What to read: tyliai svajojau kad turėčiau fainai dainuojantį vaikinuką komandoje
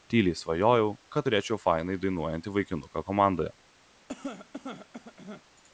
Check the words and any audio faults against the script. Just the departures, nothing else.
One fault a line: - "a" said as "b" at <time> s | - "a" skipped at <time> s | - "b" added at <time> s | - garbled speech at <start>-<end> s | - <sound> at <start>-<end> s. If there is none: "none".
- cough at 4.1-5.4 s